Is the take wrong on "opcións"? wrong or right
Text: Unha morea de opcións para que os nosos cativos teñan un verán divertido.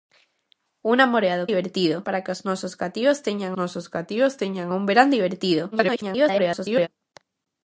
wrong